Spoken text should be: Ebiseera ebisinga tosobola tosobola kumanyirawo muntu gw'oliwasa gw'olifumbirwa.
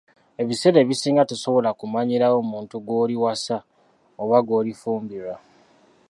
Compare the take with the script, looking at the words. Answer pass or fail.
fail